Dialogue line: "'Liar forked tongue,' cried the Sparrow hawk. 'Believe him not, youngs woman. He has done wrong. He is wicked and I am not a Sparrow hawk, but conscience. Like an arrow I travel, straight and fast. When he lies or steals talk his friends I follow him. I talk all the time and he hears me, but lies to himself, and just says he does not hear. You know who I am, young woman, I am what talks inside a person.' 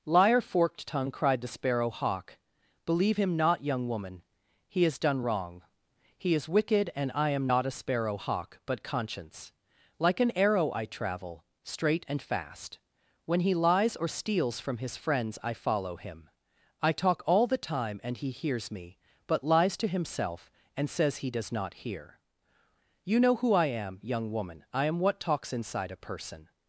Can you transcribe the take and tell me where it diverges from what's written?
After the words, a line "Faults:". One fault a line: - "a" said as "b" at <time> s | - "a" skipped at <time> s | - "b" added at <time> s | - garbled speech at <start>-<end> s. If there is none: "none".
"'Liar forked tongue,' cried the Sparrow hawk. 'Believe him not, young woman. He has done wrong. He is wicked and I am not a Sparrow hawk, but conscience. Like an arrow I travel, straight and fast. When he lies or steals from his friends I follow him. I talk all the time and he hears me, but lies to himself, and says he does not hear. You know who I am, young woman, I am what talks inside a person.'
Faults:
- "youngs" said as "young" at 3.6 s
- "talk" said as "from" at 14.6 s
- "just" skipped at 20.9 s